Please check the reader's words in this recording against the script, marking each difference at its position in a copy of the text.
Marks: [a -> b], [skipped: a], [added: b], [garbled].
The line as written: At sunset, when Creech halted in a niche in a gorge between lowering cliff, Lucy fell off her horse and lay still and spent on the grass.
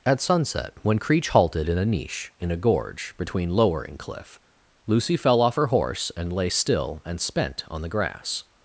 At sunset, when Creech halted in a niche in a gorge between lowering cliff, Lucy fell off her horse and lay still and spent on the grass.